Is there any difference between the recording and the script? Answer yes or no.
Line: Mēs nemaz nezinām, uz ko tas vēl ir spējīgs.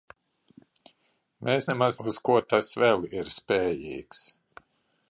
yes